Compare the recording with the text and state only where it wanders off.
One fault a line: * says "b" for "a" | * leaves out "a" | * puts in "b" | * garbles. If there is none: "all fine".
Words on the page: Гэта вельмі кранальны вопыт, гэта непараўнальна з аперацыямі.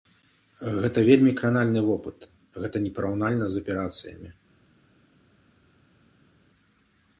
all fine